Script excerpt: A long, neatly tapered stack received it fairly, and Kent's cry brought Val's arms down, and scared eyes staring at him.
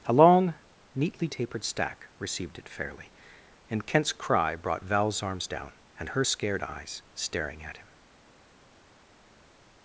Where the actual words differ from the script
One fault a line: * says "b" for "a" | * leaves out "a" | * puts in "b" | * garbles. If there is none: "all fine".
* puts in "her"